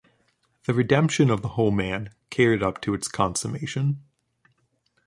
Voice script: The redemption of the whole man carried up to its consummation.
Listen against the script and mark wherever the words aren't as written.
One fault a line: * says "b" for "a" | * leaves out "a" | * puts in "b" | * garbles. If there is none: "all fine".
all fine